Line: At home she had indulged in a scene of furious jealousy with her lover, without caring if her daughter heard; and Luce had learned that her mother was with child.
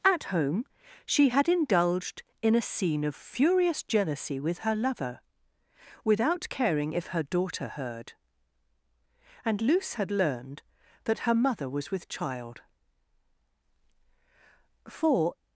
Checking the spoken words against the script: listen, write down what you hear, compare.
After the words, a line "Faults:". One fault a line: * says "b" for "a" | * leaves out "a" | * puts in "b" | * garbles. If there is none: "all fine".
At home she had indulged in a scene of furious jealousy with her lover, without caring if her daughter heard; and Luce had learned that her mother was with child. For
Faults:
* puts in "For"